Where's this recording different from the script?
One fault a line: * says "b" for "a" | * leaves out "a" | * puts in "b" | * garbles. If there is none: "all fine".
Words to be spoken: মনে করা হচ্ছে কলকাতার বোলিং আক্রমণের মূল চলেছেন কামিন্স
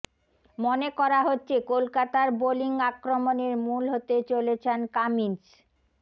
* puts in "হতে"